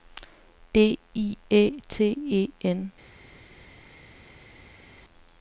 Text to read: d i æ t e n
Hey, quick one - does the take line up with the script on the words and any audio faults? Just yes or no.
yes